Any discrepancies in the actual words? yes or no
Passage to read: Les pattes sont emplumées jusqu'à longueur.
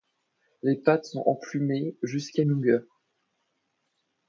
no